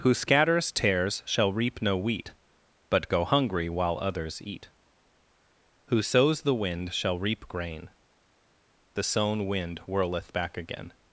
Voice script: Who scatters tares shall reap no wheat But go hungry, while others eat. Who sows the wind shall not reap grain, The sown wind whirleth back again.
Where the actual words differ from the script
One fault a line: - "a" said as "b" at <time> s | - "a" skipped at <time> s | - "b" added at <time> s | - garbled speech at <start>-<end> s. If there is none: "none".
- "not" skipped at 7.2 s